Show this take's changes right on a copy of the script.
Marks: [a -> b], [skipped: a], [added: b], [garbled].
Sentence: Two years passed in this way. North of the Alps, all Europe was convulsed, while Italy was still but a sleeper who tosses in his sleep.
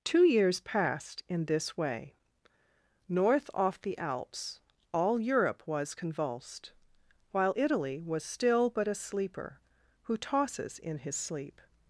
Two years passed in this way. North [of -> off] the Alps, all Europe was convulsed, while Italy was still but a sleeper who tosses in his sleep.